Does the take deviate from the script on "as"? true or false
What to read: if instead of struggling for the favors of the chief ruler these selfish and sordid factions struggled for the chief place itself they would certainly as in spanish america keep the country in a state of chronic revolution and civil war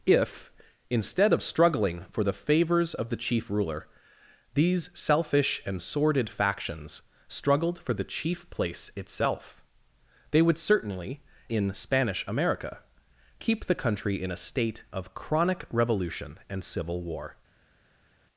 true